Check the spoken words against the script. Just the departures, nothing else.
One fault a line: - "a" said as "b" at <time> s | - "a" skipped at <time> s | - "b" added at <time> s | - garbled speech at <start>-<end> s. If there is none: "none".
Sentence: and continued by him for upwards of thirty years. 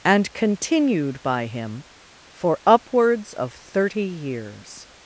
none